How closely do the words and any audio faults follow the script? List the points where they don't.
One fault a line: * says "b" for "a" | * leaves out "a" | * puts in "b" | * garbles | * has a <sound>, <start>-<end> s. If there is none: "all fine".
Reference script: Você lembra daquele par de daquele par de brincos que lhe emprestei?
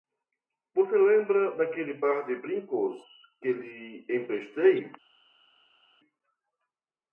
* leaves out "daquele par de"